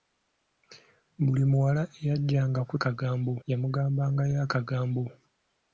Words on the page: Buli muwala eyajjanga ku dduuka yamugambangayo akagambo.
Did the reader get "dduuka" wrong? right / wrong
wrong